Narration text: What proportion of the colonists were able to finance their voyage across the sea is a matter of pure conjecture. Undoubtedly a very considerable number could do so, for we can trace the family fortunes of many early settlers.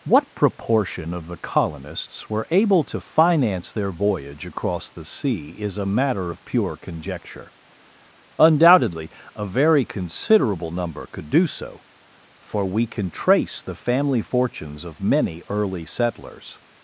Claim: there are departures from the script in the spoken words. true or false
false